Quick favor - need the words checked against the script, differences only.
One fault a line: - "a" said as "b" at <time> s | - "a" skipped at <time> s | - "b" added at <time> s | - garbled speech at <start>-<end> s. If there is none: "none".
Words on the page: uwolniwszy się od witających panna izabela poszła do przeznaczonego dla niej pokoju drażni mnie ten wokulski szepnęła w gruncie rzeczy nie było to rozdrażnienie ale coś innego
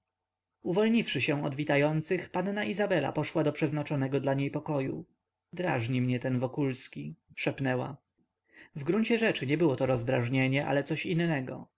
none